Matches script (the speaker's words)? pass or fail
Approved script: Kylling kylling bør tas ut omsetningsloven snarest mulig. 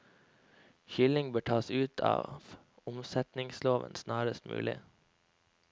fail